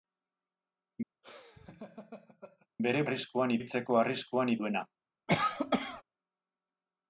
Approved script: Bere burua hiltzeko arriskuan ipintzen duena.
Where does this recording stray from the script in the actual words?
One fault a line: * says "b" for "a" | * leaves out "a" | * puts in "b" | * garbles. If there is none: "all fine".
* says "arriskuan" for "burua"
* leaves out "ipintzen"